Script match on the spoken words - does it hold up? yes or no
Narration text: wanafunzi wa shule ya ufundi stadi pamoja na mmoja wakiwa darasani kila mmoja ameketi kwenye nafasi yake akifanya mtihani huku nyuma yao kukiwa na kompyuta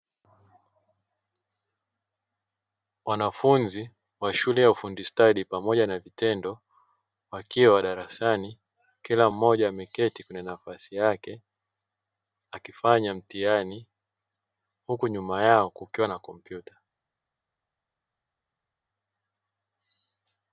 no